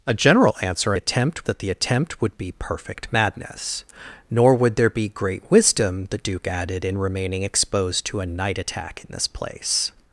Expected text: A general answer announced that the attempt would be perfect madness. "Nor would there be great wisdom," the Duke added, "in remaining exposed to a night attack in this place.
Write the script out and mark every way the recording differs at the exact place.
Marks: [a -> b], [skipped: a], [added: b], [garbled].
A general answer [announced -> attempt] that the attempt would be perfect madness. "Nor would there be great wisdom," the Duke added, "in remaining exposed to a night attack in this place.